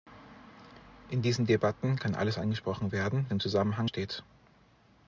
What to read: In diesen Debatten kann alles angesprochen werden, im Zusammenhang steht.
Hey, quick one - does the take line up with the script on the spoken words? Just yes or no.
yes